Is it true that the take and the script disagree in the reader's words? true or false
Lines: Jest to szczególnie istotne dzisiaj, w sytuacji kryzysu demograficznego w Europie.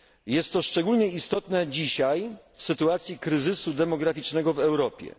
false